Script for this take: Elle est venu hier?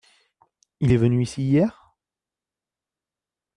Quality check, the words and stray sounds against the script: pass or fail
fail